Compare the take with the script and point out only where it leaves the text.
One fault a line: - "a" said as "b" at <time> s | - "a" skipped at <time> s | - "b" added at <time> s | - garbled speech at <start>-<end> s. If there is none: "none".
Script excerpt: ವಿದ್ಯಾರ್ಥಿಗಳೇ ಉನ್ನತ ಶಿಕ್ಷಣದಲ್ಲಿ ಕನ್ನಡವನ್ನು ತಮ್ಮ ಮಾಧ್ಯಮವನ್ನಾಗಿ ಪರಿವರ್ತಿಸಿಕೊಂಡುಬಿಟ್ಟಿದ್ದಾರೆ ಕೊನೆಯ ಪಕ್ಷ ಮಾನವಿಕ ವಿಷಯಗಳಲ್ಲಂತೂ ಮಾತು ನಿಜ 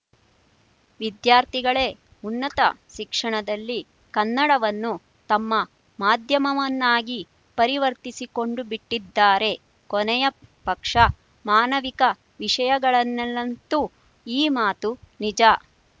- "ಈ" added at 14.3 s